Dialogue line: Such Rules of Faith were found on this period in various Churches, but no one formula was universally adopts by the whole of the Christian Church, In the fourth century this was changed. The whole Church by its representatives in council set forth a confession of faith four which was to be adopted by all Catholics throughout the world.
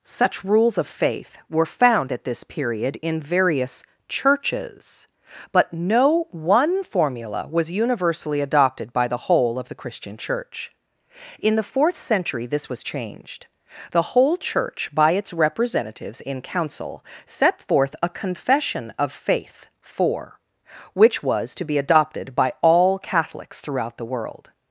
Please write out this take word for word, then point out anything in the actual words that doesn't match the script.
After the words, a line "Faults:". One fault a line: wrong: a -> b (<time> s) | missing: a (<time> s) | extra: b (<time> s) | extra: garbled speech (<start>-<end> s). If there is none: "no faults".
Such Rules of Faith were found at this period in various Churches, but no one formula was universally adopted by the whole of the Christian Church, In the fourth century this was changed. The whole Church by its representatives in council set forth a confession of faith four which was to be adopted by all Catholics throughout the world.
Faults:
wrong: on -> at (2.1 s)
wrong: adopts -> adopted (8.4 s)